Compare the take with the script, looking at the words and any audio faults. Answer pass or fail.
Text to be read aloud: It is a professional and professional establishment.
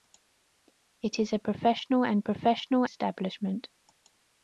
pass